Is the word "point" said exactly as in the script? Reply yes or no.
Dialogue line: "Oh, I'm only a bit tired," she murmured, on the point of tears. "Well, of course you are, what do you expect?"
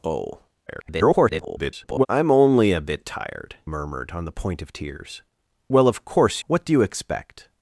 yes